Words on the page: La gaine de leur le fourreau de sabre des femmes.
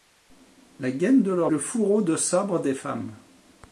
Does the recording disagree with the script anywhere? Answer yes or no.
no